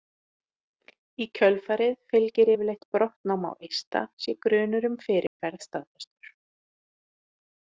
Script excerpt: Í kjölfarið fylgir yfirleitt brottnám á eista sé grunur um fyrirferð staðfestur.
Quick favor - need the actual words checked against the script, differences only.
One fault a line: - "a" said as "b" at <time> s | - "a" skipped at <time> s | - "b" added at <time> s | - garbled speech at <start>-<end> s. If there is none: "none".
none